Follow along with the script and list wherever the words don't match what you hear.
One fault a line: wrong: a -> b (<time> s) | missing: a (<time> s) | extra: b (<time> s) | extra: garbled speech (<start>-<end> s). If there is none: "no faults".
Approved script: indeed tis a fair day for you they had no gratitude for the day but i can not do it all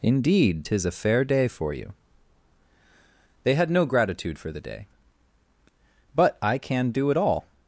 missing: not (6.9 s)